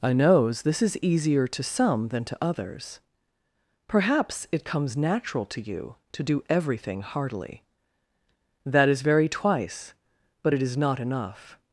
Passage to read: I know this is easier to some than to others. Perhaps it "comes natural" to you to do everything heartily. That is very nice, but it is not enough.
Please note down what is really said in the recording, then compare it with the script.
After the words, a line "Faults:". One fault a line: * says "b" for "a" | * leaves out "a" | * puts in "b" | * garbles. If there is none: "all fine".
I knows this is easier to some than to others. Perhaps it "comes natural" to you to do everything heartily. That is very twice, but it is not enough.
Faults:
* says "knows" for "know"
* says "twice" for "nice"